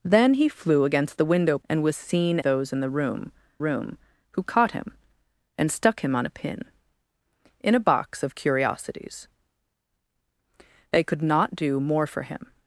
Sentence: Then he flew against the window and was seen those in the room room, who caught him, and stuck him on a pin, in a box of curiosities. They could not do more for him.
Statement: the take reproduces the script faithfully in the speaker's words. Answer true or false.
true